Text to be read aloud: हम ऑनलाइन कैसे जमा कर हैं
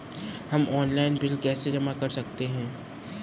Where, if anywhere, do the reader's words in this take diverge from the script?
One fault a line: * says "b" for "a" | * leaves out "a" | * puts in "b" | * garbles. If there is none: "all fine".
* puts in "बिल"
* puts in "सकते"